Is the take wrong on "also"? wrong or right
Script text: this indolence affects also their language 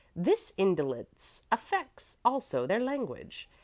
right